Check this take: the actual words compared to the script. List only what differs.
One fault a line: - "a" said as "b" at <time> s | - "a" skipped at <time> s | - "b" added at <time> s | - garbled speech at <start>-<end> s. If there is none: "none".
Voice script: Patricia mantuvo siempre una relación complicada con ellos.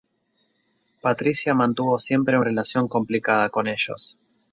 - "una" skipped at 2.4 s